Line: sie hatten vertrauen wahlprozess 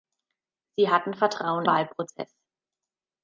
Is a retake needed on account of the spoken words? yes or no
no